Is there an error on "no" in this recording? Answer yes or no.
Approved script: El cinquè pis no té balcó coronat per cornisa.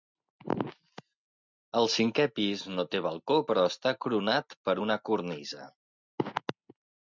no